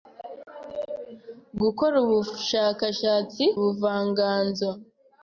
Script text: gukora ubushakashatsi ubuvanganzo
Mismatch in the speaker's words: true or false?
false